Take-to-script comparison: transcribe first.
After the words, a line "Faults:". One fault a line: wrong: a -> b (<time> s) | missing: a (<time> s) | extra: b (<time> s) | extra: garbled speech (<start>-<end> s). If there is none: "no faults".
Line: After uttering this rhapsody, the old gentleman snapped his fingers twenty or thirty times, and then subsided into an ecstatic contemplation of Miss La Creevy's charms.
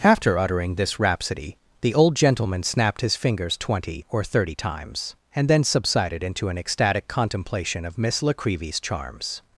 After uttering this rhapsody, the old gentleman snapped his fingers twenty or thirty times, and then subsided into an ecstatic contemplation of Miss La Creevy's charms.
Faults:
no faults